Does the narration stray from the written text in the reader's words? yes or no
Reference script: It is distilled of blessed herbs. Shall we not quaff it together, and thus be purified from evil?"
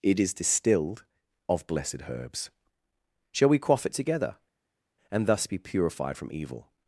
yes